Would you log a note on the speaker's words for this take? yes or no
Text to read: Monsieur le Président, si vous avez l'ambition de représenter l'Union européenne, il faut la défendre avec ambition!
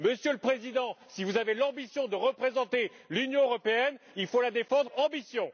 yes